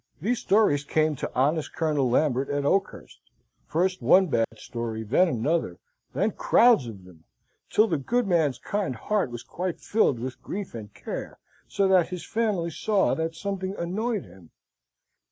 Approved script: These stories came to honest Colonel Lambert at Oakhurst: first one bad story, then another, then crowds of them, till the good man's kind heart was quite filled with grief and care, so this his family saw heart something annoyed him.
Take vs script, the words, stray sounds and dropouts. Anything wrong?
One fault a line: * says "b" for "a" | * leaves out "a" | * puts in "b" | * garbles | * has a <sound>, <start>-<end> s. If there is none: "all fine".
* has a dropout, 4.4-4.5 s
* says "that" for "this"
* says "that" for "heart"